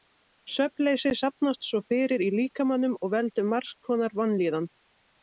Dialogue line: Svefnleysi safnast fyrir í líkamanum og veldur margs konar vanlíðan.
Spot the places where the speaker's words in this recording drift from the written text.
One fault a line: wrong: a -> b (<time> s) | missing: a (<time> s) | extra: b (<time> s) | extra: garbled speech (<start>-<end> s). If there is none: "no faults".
extra: svo (1.7 s)